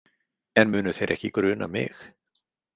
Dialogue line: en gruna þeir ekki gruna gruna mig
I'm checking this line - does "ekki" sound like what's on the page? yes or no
yes